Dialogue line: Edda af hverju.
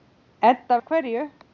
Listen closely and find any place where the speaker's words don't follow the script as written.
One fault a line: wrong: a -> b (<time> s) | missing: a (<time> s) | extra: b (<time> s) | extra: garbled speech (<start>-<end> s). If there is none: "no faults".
no faults